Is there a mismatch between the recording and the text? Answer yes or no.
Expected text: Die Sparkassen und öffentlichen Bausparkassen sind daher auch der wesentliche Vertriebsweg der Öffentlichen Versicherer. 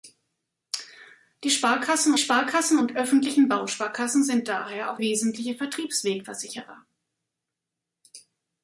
yes